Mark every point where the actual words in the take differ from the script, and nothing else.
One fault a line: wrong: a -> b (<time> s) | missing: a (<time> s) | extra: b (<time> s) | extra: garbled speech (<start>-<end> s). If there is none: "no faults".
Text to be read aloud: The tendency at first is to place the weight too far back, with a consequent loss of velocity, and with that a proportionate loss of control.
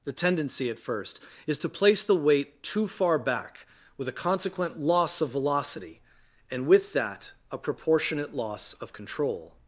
no faults